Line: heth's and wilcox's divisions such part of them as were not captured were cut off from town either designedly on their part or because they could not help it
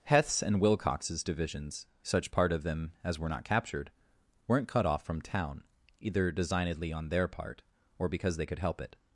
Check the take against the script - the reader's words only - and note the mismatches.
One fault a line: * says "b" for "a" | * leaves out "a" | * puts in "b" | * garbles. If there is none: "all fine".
* says "weren't" for "were"
* leaves out "not"